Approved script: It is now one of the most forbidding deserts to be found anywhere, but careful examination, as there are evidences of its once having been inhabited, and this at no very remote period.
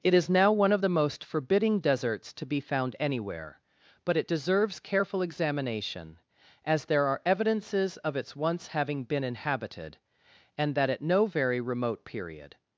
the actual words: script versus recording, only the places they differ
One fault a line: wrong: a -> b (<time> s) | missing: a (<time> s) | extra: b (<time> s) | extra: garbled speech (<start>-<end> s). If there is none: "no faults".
extra: it deserves (4.1 s)
wrong: this -> that (10.7 s)